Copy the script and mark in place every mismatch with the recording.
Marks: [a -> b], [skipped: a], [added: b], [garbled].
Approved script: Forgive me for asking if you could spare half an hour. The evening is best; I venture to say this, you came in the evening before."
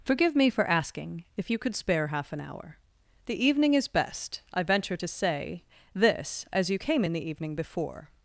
Forgive me for asking if you could spare half an hour. The evening is best; I venture to say this, [added: as] you came in the evening before."